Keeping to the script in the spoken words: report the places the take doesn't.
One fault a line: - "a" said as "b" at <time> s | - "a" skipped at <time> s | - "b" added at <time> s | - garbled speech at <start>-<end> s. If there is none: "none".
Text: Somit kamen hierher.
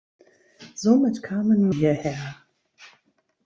none